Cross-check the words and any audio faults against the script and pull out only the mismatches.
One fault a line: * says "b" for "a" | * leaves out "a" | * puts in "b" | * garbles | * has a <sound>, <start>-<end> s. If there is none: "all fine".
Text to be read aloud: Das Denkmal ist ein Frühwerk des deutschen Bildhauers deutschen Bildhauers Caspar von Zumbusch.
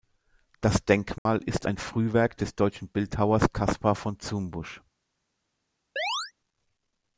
* has a dropout, 1.2-1.3 s
* leaves out "deutschen Bildhauers"
* has a chirp, 6.0-6.3 s